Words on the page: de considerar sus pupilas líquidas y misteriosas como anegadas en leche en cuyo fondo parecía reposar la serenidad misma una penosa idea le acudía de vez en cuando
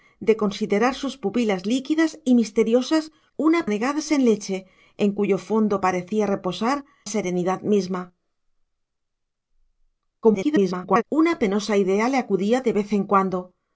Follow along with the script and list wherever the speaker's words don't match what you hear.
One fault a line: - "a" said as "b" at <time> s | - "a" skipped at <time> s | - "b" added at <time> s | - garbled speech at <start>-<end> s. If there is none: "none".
- "como" said as "una" at 3.4 s
- "la" skipped at 6.8 s
- garbled speech at 10.2-11.0 s